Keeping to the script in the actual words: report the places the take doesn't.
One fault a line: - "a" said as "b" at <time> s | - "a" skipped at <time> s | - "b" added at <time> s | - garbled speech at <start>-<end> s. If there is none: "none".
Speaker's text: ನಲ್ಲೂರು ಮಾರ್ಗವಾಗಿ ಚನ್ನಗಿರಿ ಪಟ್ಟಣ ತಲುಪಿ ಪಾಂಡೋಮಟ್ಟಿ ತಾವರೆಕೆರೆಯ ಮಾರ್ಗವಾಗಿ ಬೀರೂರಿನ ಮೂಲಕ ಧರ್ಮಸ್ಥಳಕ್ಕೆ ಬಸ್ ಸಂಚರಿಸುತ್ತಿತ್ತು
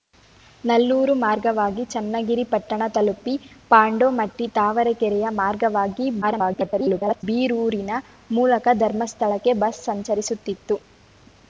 - garbled speech at 6.2-7.2 s